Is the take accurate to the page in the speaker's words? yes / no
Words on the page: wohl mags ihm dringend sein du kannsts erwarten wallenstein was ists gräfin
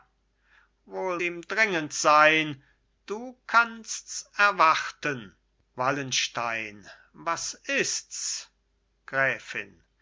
no